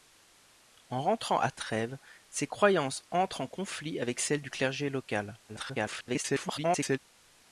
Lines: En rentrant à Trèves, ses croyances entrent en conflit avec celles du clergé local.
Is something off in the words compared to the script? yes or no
yes